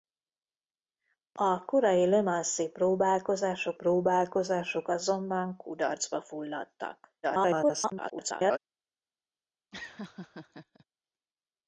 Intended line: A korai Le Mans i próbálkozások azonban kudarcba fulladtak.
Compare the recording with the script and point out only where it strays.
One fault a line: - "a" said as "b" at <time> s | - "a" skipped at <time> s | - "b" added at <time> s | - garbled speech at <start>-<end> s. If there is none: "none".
- "próbálkozások" added at 3.7 s
- garbled speech at 7.2-8.6 s